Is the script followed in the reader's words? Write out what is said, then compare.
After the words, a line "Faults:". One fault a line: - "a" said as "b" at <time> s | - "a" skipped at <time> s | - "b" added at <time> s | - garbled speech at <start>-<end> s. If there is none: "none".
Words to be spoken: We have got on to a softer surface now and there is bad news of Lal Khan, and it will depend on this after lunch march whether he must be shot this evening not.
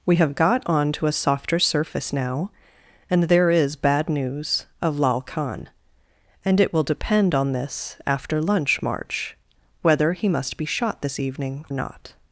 We have got on to a softer surface now and there is bad news of Lal Khan, and it will depend on this after lunch march whether he must be shot this evening not.
Faults:
none